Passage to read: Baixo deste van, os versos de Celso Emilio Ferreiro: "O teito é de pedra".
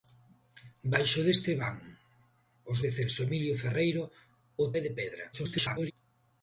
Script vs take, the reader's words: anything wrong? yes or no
yes